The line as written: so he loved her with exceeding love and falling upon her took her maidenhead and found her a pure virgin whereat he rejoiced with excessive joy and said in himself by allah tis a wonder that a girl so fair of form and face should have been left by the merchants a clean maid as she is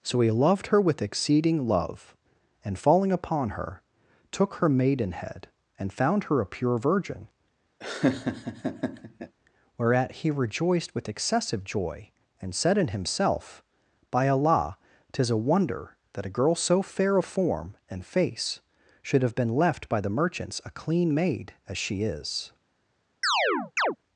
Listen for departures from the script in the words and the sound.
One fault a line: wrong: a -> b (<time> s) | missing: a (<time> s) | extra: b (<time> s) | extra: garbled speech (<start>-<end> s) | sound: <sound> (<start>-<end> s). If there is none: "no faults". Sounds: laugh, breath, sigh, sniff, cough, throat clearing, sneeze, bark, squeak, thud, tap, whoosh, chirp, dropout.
sound: laugh (7.8-9.3 s)
sound: chirp (23.2-24.0 s)